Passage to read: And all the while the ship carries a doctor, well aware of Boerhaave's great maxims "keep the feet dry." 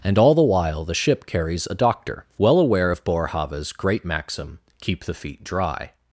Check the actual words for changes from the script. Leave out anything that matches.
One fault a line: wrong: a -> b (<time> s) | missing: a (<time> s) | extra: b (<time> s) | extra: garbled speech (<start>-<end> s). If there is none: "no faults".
wrong: maxims -> maxim (4.0 s)